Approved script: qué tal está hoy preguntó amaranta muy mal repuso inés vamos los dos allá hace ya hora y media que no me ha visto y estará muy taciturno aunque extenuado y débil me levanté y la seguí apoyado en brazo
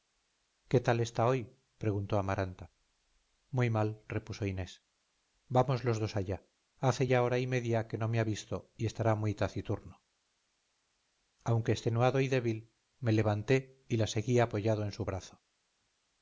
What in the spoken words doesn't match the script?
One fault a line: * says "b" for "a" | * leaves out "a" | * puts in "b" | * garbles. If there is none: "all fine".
* puts in "su"